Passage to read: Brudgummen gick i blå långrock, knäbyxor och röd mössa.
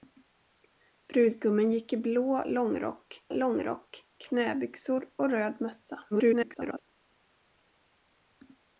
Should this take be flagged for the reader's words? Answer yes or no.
yes